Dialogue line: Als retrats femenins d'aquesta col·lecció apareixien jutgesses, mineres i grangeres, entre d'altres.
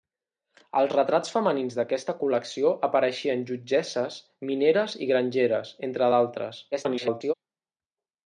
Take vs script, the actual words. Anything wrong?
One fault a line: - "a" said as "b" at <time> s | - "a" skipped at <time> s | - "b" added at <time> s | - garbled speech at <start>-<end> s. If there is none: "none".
- garbled speech at 6.7-7.3 s